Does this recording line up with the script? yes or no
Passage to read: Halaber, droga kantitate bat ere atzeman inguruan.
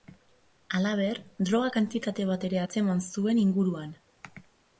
no